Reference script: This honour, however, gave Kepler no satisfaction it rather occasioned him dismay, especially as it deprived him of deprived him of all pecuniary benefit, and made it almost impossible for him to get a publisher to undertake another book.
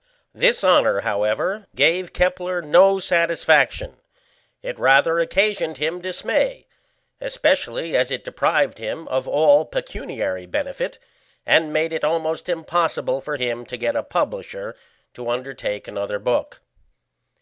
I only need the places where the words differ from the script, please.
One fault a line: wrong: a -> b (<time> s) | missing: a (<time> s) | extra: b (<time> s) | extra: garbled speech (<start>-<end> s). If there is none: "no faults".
missing: deprived him of (9.3 s)